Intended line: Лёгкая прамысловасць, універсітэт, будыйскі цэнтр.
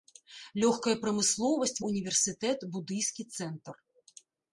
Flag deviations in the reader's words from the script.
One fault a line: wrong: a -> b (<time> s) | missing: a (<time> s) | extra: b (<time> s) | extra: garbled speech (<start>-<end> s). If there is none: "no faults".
no faults